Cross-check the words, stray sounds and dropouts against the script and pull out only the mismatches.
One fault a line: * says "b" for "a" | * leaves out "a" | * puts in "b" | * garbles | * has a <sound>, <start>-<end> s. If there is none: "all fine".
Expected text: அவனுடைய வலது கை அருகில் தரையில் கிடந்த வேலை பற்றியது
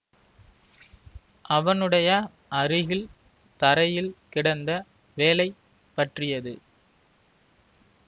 * leaves out "வலது கை"